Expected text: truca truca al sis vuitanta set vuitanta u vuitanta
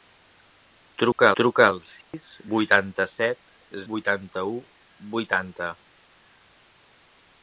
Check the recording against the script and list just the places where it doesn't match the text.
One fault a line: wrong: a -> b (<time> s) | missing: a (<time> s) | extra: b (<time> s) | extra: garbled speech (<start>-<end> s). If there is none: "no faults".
no faults